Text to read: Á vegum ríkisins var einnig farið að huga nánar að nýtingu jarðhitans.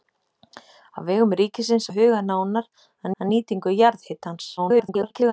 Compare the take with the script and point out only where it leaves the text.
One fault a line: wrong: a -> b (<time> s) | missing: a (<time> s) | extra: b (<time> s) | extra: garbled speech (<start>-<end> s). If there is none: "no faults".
missing: var einnig farið (1.9 s)
extra: að (3.2 s)
extra: garbled speech (4.6-5.3 s)